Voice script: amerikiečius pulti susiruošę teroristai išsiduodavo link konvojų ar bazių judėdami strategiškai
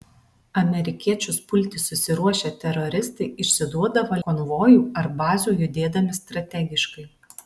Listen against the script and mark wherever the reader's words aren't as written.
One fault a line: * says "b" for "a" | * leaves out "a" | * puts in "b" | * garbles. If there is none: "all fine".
* leaves out "link"